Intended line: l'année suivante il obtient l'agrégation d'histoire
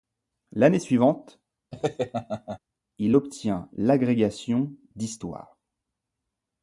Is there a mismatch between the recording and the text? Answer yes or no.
no